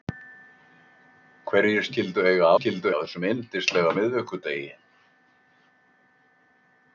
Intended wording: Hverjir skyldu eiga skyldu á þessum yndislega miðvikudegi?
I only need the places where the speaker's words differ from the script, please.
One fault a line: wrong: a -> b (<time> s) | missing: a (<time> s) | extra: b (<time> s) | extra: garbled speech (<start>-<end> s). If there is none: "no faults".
no faults